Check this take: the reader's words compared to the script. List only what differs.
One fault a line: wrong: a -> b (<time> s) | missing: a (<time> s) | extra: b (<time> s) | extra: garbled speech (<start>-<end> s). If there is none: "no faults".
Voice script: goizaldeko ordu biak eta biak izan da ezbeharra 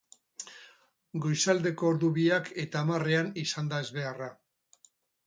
wrong: biak -> hamarrean (2.9 s)